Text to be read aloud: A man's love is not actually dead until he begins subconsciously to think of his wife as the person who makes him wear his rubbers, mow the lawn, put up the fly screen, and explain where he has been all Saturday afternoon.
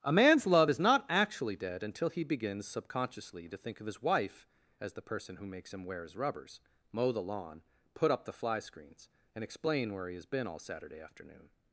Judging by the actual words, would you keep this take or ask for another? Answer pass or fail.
fail